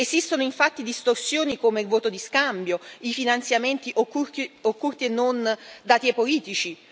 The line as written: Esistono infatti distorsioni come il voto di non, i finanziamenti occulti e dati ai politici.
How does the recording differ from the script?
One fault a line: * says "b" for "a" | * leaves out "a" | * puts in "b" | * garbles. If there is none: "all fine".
* says "scambio" for "non"
* puts in "non"